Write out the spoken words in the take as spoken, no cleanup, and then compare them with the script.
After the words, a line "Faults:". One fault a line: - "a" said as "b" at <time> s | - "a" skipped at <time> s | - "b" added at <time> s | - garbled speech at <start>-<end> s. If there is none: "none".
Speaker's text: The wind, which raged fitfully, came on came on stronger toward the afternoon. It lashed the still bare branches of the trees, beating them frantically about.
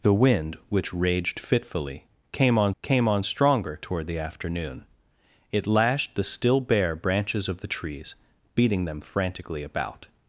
The wind, which raged fitfully, came on came on stronger toward the afternoon. It lashed the still bare branches of the trees, beating them frantically about.
Faults:
none